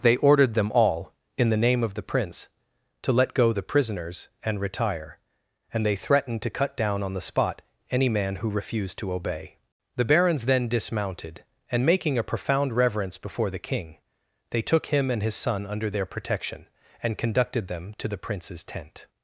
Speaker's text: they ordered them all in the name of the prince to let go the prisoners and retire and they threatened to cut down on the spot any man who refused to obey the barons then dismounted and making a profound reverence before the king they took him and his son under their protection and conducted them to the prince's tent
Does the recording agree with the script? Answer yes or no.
yes